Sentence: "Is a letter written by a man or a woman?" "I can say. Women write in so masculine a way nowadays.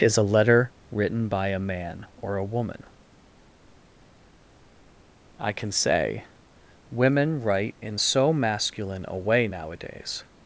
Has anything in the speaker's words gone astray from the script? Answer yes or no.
no